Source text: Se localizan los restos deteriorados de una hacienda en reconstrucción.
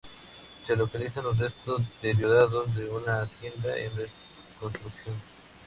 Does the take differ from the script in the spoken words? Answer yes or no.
no